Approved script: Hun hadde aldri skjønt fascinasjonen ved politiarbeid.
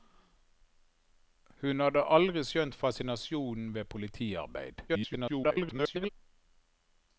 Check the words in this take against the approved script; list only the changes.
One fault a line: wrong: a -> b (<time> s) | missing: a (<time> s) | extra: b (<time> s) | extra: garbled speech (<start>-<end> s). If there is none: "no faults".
extra: garbled speech (4.9-6.1 s)